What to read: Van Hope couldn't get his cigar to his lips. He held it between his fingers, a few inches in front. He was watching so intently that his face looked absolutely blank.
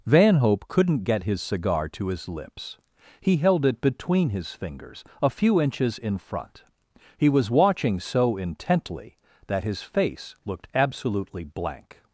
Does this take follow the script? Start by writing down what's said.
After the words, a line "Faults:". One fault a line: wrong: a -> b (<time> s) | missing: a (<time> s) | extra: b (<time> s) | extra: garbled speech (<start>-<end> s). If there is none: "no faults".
Van Hope couldn't get his cigar to his lips. He held it between his fingers, a few inches in front. He was watching so intently that his face looked absolutely blank.
Faults:
no faults